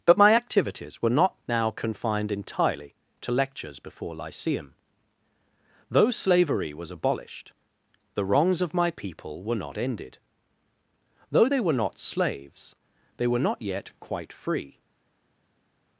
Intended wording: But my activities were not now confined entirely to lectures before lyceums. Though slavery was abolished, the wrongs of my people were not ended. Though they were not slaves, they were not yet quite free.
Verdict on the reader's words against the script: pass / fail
fail